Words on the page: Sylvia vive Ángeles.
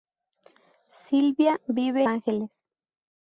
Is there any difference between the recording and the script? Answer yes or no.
no